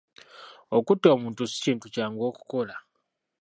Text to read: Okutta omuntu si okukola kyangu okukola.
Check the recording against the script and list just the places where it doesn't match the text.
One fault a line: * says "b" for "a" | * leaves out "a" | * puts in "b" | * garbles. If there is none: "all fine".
* says "kintu" for "okukola"